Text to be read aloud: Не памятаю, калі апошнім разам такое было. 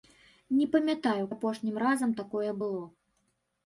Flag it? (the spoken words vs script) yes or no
yes